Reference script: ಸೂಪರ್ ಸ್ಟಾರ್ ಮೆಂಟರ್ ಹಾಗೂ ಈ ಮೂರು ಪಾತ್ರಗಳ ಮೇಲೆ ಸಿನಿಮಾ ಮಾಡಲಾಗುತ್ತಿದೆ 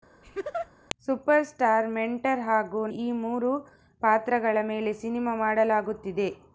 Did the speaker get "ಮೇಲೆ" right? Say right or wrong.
right